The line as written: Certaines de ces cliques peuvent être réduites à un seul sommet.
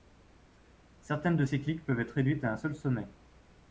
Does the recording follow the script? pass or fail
pass